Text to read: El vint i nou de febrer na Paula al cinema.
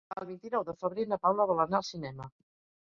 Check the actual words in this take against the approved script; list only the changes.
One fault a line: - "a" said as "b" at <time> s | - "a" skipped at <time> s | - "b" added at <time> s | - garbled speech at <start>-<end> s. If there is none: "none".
- "vol anar" added at 1.5 s